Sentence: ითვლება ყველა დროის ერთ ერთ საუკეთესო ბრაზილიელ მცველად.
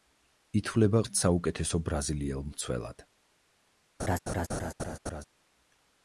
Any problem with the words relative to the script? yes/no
yes